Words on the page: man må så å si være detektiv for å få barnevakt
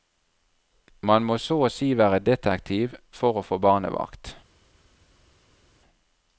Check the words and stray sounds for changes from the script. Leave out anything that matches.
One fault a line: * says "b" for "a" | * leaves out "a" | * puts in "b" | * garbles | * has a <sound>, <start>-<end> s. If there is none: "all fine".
all fine